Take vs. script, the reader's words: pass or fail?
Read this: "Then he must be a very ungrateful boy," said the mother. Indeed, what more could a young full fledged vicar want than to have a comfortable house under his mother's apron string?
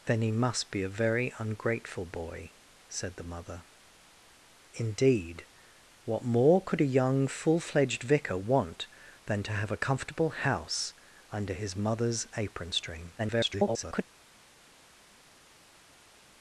fail